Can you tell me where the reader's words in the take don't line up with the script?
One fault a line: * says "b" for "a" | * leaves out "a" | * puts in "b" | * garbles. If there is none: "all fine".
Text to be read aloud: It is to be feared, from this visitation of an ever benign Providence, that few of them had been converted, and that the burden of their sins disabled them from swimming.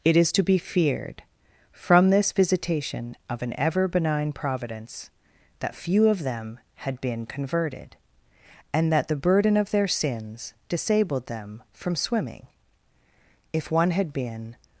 * puts in "If one had been"